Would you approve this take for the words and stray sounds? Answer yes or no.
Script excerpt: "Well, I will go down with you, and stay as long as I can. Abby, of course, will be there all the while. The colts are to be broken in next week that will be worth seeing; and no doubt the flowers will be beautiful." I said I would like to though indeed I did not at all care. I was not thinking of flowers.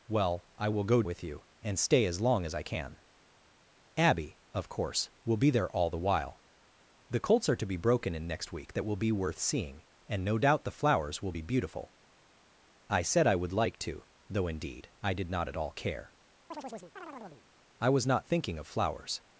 no